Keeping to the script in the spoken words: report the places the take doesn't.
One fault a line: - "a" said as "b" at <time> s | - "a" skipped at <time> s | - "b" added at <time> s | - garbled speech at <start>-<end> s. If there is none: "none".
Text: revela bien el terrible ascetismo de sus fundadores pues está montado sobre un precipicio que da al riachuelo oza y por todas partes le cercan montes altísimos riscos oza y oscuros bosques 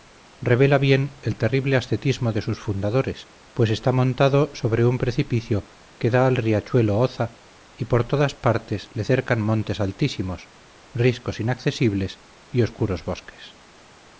- "oza" said as "inaccesibles" at 11.4 s